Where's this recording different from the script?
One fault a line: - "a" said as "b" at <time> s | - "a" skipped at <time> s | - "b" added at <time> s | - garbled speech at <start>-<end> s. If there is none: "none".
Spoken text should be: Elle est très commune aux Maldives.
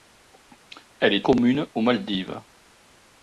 - "très" skipped at 1.2 s